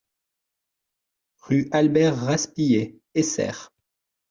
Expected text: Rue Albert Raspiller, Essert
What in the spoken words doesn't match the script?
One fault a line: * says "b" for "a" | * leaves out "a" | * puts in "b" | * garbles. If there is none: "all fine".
all fine